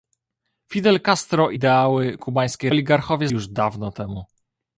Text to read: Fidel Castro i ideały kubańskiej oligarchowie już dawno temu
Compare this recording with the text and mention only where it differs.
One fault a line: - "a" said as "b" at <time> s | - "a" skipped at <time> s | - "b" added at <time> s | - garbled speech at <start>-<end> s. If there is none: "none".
none